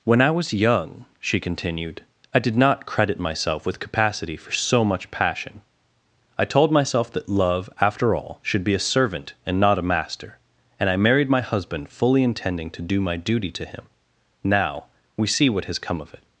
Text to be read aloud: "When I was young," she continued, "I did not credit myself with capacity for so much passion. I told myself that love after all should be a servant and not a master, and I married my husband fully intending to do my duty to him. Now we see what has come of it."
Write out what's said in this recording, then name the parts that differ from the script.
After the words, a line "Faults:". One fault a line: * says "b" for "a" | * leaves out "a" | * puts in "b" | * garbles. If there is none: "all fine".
"When I was young," she continued, "I did not credit myself with capacity for so much passion. I told myself that love after all should be a servant and not a master, and I married my husband fully intending to do my duty to him. Now we see what has come of it."
Faults:
all fine